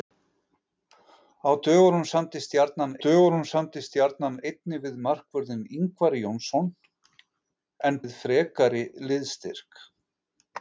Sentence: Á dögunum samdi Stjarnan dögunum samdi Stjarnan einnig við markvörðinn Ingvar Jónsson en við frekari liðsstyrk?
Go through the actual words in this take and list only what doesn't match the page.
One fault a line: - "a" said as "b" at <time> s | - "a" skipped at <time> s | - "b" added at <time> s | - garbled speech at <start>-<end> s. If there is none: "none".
none